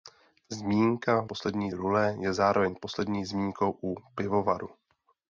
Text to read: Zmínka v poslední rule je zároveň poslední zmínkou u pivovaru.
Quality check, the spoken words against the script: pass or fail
pass